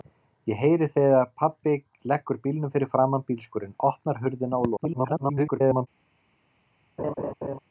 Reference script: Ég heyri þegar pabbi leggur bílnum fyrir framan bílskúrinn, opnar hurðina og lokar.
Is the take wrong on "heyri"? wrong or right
right